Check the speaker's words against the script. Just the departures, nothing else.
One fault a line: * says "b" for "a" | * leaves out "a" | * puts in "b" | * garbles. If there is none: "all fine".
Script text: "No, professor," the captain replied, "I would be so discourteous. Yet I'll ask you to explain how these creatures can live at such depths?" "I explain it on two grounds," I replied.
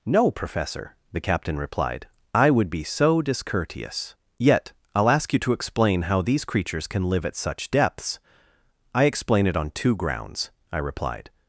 all fine